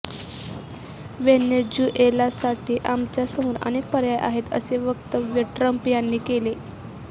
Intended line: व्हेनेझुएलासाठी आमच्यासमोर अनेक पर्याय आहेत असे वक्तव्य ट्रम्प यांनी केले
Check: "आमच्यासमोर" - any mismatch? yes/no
no